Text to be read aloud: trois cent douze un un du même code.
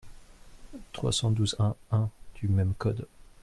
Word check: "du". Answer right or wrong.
right